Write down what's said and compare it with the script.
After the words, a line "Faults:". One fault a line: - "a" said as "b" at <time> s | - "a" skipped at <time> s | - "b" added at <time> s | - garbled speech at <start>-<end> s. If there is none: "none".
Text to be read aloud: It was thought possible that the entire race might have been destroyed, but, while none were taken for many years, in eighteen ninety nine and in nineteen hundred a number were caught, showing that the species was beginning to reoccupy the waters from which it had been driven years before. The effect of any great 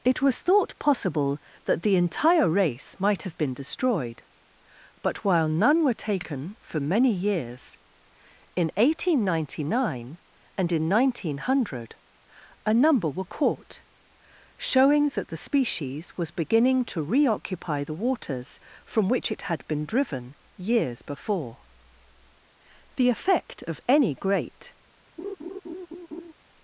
It was thought possible that the entire race might have been destroyed, but, while none were taken for many years, in eighteen ninety nine and in nineteen hundred a number were caught, showing that the species was beginning to reoccupy the waters from which it had been driven years before. The effect of any great
Faults:
none